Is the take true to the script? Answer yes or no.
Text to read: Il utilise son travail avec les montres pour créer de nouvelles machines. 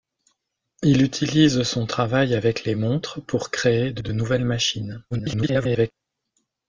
no